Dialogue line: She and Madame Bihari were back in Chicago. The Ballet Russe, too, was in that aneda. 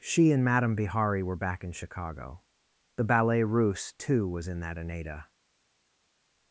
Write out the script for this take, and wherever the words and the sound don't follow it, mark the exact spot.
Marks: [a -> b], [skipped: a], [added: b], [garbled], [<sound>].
She and Madame Bihari were back in Chicago. The Ballet Russe, too, was in that aneda.